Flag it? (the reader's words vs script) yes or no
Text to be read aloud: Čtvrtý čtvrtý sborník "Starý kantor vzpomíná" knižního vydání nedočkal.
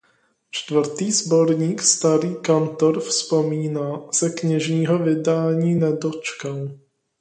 yes